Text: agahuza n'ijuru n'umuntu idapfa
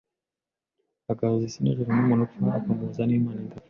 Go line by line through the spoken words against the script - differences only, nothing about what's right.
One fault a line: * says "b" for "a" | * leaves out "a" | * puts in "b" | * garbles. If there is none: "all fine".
* puts in "isi"
* puts in "upfa akamuhuza n'imana"